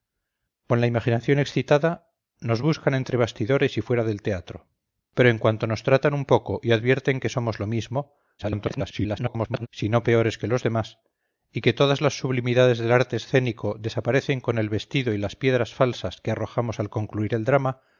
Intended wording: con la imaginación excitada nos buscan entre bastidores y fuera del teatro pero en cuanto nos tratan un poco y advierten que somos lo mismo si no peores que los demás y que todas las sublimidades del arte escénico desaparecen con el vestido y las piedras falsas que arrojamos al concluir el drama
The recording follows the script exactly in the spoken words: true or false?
false